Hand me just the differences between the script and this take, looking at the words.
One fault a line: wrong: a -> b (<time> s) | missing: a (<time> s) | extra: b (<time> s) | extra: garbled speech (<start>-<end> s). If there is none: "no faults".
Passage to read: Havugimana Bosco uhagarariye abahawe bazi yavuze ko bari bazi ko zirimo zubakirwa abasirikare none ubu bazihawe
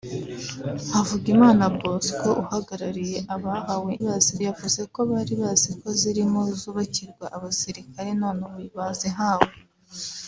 no faults